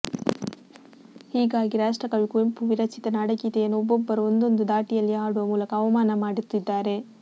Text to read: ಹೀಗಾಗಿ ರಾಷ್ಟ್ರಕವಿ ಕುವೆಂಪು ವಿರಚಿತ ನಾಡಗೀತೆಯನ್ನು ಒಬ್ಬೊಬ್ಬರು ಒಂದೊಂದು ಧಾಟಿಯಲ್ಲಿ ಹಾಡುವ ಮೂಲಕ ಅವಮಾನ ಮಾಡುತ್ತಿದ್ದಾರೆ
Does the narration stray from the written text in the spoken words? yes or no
no